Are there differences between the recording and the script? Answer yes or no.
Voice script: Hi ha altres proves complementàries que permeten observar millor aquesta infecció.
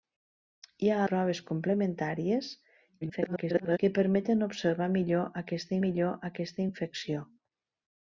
yes